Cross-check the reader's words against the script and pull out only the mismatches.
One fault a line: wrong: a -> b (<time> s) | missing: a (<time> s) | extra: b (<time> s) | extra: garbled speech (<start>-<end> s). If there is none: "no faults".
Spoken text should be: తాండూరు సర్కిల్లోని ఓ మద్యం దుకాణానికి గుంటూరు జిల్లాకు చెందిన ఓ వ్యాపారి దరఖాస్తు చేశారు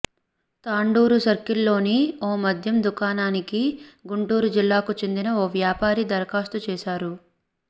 no faults